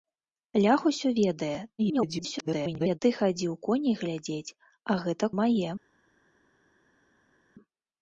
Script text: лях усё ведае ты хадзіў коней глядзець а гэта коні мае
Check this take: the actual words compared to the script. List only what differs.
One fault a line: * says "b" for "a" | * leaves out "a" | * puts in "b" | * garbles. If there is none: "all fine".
* garbles
* leaves out "коні"